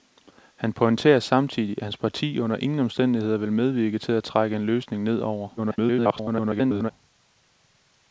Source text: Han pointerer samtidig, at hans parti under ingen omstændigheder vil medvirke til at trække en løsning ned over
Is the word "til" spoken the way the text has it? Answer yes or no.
yes